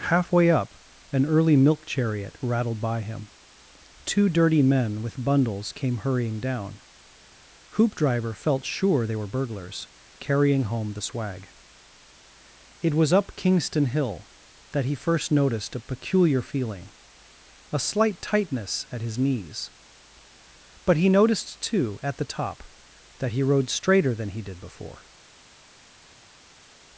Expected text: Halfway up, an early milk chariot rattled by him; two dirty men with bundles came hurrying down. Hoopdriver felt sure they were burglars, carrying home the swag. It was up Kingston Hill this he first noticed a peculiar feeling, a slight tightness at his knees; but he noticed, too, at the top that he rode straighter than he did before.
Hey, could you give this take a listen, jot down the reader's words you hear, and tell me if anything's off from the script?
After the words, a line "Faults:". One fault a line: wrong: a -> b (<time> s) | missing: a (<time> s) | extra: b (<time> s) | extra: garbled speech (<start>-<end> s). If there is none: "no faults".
Halfway up, an early milk chariot rattled by him; two dirty men with bundles came hurrying down. Hoopdriver felt sure they were burglars, carrying home the swag. It was up Kingston Hill that he first noticed a peculiar feeling, a slight tightness at his knees; but he noticed, too, at the top that he rode straighter than he did before.
Faults:
wrong: this -> that (14.7 s)